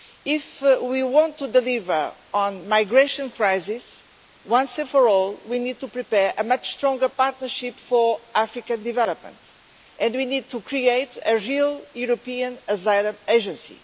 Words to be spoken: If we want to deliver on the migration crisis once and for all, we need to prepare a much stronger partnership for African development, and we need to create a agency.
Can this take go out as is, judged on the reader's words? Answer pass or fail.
fail